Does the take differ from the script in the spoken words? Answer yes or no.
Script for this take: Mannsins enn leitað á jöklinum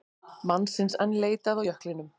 no